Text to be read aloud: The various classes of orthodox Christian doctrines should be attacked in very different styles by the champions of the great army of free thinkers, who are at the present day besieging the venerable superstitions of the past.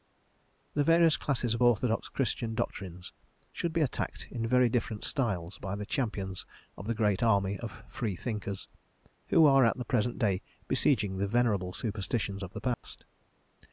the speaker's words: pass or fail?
pass